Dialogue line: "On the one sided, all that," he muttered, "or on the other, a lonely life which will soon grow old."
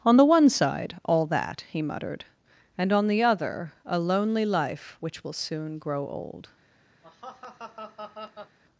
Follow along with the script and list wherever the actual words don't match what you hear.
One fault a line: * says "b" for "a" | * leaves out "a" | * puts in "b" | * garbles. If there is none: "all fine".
* says "side" for "sided"
* says "and" for "or"